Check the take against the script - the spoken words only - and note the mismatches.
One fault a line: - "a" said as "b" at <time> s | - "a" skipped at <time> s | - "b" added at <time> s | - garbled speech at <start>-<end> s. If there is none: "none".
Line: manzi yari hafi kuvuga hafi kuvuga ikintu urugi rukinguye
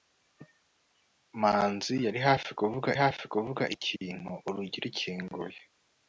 none